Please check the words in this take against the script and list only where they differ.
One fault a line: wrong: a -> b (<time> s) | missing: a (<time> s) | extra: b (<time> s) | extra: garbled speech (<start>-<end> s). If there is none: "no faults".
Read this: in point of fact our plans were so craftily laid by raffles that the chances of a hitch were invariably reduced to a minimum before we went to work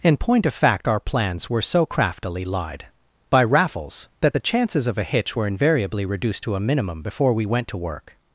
wrong: laid -> lied (2.4 s)